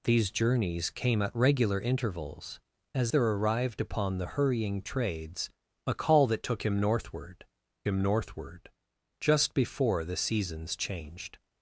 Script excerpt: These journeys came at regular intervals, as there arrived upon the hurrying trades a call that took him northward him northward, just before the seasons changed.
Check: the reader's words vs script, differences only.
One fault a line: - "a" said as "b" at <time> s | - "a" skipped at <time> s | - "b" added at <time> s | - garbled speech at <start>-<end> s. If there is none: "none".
none